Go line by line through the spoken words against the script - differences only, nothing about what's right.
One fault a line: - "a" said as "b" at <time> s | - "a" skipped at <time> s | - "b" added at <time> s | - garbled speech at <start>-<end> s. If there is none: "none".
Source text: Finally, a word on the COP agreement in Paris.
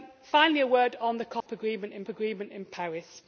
- "agreement in" added at 2.1 s